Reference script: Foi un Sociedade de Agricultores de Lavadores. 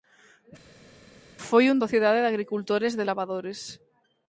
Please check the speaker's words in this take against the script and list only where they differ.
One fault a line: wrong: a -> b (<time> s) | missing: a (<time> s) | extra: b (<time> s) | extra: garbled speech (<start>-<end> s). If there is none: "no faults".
no faults